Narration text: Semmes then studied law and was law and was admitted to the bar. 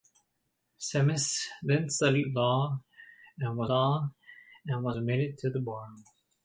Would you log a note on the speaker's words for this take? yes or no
no